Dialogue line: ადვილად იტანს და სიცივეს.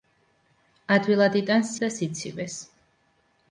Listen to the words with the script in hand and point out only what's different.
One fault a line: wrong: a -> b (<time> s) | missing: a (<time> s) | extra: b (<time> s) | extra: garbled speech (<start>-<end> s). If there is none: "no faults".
no faults